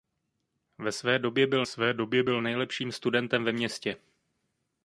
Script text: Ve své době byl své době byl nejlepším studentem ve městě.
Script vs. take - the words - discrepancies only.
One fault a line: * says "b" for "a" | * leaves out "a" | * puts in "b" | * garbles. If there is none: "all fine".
all fine